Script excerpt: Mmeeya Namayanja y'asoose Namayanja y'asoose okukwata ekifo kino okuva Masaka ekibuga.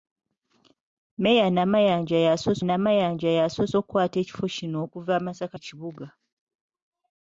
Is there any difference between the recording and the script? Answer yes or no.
no